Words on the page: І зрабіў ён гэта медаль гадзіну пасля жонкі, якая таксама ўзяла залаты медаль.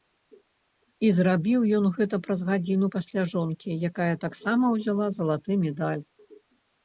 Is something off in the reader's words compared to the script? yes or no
yes